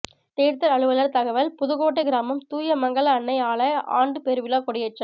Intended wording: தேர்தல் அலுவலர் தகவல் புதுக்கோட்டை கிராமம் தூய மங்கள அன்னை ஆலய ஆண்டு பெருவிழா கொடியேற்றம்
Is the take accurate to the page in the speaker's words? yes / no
yes